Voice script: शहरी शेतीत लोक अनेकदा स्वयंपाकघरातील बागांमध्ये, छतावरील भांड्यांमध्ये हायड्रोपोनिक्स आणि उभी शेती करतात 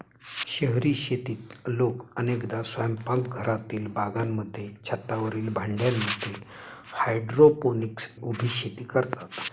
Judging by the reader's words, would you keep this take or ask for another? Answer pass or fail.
fail